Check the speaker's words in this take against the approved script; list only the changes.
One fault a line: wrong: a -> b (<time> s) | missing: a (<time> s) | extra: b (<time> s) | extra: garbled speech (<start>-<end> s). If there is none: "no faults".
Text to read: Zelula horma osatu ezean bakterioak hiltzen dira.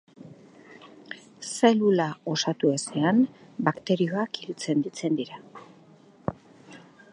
missing: horma (2.1 s)
extra: hiltzen (4.8 s)